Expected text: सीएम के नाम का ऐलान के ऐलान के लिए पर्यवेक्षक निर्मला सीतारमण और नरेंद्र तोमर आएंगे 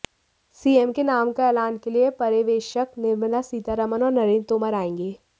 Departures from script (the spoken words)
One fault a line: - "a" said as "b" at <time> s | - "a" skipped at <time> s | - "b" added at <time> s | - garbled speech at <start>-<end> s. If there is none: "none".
- "ऐलान के" skipped at 1.9 s